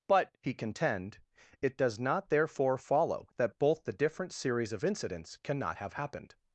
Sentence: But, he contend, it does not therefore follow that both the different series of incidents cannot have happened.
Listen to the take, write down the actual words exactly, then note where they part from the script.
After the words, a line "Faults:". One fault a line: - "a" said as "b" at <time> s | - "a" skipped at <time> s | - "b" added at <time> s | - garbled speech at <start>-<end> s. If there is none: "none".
But, he contend, it does not therefore follow that both the different series of incidents cannot have happened.
Faults:
none